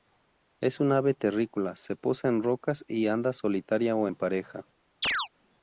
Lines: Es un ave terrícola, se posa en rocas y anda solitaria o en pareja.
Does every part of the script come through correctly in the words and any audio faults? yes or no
no